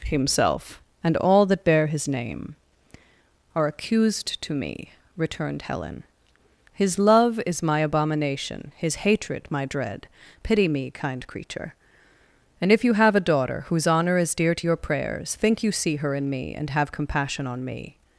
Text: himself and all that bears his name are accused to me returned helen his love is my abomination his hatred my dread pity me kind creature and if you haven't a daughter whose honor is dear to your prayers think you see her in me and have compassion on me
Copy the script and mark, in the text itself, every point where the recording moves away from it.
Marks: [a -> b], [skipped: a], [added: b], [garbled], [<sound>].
himself and all that [bears -> bear] his name are accused to me returned helen his love is my abomination his hatred my dread pity me kind creature and if you [haven't -> have] a daughter whose honor is dear to your prayers think you see her in me and have compassion on me